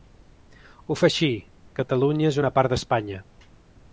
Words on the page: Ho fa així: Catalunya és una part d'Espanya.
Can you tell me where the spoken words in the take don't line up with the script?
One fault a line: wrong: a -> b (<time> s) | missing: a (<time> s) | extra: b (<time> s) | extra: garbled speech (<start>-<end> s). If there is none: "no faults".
no faults